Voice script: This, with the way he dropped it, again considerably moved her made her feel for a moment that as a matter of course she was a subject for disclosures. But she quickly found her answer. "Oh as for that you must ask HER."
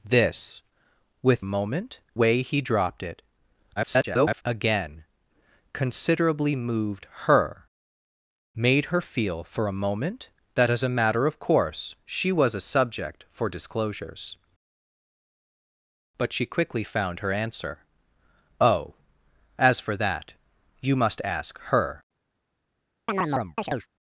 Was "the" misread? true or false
true